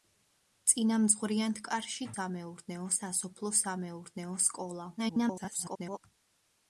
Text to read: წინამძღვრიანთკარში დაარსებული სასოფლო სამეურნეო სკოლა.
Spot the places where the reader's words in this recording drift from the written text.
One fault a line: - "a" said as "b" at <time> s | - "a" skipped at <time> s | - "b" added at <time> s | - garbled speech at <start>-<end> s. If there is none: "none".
- "დაარსებული" said as "სამეურნეო" at 2.2 s
- garbled speech at 5.0-6.0 s